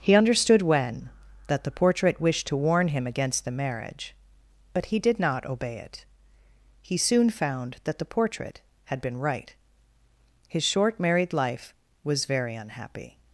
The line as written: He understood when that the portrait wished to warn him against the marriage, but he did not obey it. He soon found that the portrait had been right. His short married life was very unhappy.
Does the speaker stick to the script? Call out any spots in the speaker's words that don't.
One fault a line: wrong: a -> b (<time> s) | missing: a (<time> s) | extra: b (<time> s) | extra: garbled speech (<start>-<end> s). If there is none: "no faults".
no faults